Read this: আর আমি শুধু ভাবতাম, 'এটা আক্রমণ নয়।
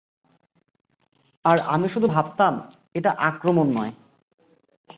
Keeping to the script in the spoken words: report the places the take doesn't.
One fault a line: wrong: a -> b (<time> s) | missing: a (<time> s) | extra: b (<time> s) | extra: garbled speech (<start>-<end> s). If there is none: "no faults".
no faults